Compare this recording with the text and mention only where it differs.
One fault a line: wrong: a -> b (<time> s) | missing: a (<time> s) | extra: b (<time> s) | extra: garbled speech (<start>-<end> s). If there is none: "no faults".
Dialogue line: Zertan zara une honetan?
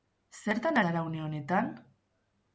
no faults